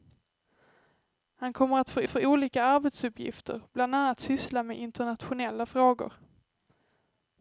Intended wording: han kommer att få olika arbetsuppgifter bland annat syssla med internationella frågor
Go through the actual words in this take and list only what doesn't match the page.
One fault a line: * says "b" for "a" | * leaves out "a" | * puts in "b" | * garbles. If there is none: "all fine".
* puts in "få"